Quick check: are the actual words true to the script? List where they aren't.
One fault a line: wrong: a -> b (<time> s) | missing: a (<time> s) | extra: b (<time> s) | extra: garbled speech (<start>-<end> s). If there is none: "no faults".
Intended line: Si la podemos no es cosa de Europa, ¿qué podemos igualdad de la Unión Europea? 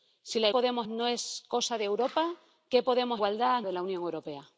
no faults